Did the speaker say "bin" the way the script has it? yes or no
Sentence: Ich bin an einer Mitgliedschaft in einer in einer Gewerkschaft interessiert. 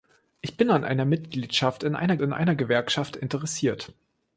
yes